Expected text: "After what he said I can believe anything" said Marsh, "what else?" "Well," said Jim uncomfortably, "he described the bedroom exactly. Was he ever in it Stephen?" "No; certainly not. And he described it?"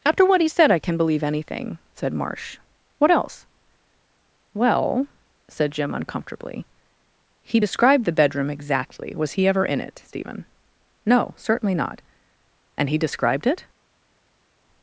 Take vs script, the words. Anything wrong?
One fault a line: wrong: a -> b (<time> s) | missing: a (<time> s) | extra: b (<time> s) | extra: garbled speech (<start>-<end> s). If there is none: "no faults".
no faults